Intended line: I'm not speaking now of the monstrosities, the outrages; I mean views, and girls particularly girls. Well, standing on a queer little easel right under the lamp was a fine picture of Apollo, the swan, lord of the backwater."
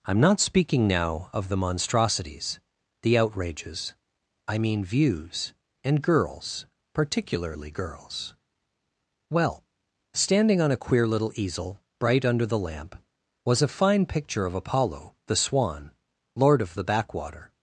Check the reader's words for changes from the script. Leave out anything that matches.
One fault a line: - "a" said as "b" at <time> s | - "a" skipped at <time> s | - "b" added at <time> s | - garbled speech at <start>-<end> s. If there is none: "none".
- "right" said as "bright" at 12.0 s